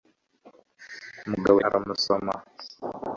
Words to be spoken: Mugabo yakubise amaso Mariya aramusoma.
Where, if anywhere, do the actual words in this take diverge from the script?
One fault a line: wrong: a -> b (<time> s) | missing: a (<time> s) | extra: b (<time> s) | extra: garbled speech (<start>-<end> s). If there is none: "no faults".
missing: yakubise amaso Mariya (1.6 s)